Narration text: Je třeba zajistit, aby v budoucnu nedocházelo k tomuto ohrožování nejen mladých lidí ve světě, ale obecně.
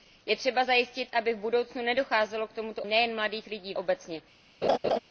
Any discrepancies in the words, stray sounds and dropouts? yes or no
yes